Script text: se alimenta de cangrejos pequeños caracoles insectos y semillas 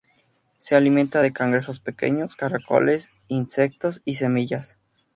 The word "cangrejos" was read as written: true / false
true